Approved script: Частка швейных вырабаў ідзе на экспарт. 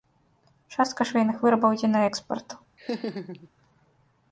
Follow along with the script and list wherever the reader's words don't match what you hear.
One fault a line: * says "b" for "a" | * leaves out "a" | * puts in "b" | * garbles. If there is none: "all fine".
all fine